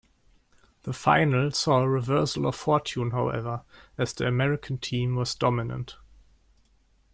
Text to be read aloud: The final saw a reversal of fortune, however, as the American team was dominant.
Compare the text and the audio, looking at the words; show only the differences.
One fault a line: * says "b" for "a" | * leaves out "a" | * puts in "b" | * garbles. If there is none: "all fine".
all fine